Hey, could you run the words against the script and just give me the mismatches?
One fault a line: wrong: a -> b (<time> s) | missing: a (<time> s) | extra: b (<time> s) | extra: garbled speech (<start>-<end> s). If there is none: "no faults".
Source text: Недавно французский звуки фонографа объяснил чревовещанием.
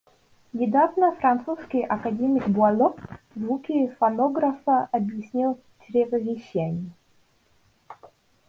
extra: академик Буало (1.8 s)